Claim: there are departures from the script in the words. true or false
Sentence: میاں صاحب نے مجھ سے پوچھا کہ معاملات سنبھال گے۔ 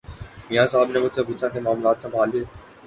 false